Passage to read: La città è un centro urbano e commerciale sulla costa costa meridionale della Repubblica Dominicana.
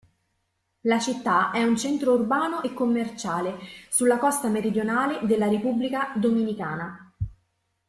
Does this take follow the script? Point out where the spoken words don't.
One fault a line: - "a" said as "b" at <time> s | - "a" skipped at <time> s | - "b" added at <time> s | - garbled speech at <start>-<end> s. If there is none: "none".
- "costa" skipped at 4.5 s